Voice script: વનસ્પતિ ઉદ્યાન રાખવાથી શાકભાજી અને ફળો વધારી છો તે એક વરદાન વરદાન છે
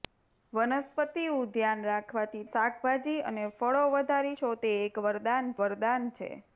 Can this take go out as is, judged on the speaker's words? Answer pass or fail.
pass